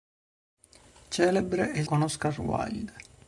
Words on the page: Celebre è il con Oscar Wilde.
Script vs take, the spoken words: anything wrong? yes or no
no